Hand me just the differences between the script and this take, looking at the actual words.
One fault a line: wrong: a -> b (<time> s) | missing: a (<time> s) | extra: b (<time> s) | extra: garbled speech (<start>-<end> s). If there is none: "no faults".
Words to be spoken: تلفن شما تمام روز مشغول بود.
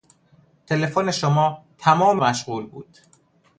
missing: روز (2.2 s)